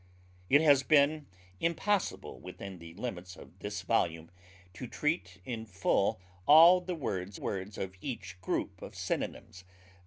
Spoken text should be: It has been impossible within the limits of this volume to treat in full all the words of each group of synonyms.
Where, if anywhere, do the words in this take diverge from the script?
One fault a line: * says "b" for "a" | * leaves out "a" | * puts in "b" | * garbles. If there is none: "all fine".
* puts in "words"